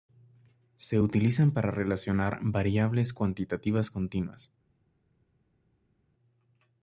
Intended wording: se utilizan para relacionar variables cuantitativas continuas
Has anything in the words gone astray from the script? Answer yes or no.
no